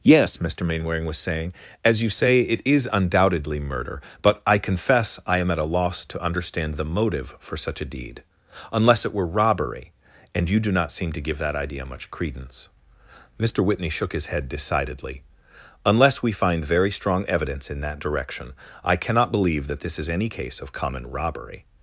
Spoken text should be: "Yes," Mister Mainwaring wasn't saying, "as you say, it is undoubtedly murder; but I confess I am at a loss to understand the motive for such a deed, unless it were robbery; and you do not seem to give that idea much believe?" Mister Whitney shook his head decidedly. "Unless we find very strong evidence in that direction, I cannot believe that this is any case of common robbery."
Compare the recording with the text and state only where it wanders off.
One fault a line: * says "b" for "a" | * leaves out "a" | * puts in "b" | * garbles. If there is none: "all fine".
* says "was" for "wasn't"
* says "credence" for "believe"